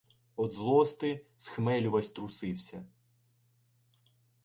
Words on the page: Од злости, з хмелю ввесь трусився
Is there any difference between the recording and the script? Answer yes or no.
no